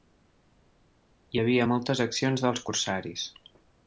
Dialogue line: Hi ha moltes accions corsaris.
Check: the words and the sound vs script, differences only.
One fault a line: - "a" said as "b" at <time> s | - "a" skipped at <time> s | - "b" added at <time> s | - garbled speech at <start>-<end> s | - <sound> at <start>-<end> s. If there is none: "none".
- "ha" said as "havia" at 1.4 s
- "dels" added at 2.5 s